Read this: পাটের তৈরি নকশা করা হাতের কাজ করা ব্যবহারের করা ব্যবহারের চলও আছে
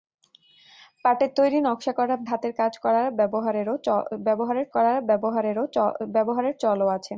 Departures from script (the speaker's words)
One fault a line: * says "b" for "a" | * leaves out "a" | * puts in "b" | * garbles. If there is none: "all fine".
all fine